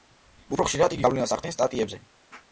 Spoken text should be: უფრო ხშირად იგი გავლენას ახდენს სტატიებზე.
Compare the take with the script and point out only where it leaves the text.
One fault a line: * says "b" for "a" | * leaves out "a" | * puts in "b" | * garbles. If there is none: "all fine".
all fine